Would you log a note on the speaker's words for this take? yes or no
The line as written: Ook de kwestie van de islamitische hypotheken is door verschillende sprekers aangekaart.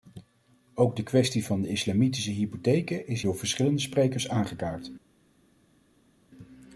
no